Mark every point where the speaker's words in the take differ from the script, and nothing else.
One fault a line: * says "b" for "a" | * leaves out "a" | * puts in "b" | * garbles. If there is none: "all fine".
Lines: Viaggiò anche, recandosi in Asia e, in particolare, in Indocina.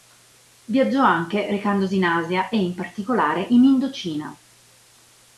all fine